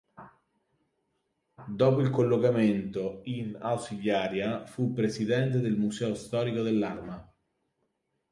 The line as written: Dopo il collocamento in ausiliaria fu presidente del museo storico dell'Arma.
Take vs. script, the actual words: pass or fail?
pass